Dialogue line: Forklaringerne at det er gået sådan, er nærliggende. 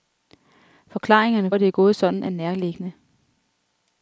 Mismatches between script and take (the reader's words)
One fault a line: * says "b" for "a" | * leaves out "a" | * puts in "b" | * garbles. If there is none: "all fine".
all fine